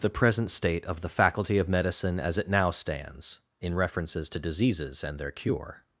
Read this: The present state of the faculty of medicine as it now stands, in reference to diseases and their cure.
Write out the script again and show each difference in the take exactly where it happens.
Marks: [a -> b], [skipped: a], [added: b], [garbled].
The present state of the faculty of medicine as it now stands, in [reference -> references] to diseases and their cure.